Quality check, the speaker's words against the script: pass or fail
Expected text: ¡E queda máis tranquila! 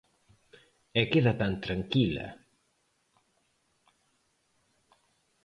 fail